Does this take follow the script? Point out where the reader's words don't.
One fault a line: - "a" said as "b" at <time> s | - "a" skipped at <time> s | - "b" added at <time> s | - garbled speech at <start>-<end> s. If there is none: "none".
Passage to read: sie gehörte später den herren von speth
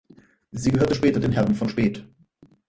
none